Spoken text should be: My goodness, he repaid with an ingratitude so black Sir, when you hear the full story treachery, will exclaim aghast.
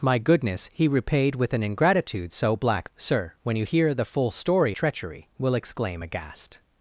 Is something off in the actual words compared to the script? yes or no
no